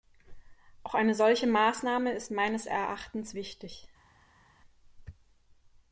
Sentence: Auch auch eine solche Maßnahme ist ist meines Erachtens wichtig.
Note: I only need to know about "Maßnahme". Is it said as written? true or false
true